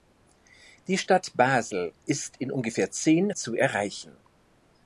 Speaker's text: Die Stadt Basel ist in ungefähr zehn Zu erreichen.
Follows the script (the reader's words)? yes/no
yes